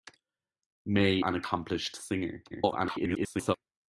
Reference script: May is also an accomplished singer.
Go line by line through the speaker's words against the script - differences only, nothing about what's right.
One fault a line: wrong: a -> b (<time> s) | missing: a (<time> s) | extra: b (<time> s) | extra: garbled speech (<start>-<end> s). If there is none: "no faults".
missing: is also (1.2 s)
extra: garbled speech (2.5-3.6 s)